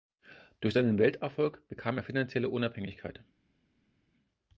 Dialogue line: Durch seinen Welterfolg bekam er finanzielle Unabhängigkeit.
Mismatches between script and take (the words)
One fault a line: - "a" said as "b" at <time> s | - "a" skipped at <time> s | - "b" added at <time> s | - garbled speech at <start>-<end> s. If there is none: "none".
none